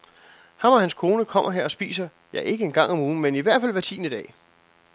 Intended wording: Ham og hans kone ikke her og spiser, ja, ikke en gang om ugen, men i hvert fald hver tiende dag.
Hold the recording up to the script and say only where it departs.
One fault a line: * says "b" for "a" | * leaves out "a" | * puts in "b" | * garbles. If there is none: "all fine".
* says "kommer" for "ikke"